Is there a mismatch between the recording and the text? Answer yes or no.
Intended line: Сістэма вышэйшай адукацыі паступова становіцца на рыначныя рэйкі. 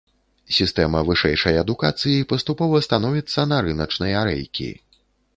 no